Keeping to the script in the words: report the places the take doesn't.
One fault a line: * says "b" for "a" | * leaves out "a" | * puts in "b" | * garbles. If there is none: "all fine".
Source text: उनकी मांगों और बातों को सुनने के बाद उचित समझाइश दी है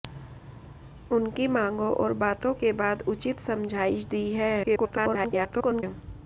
* leaves out "को सुनने"
* garbles